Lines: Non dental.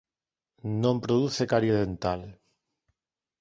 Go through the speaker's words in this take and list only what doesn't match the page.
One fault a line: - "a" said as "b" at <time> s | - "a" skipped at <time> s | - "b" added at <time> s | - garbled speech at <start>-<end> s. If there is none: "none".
- "produce carie" added at 1.0 s